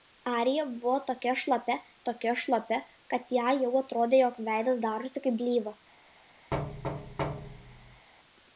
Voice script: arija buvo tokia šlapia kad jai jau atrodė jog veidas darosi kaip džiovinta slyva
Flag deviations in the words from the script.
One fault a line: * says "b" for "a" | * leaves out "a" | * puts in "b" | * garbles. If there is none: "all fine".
* puts in "tokia šlapia"
* leaves out "džiovinta"